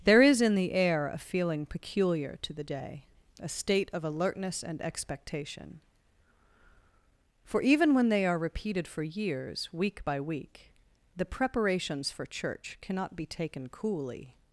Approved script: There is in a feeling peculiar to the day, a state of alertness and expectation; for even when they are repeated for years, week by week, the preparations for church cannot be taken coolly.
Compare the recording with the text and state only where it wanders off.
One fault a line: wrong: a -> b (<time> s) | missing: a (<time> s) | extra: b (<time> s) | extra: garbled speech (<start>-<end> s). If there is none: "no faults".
extra: the air (0.6 s)